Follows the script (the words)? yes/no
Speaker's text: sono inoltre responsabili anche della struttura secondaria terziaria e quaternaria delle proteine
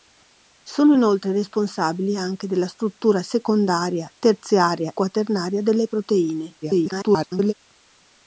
no